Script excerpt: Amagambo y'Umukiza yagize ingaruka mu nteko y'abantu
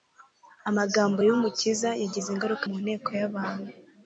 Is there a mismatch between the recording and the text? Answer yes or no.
no